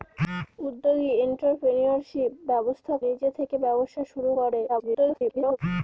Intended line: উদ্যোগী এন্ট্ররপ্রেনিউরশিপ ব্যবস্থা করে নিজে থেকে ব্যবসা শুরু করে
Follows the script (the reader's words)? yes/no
no